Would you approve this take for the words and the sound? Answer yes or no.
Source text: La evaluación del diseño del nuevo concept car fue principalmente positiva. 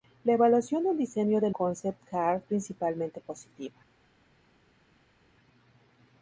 no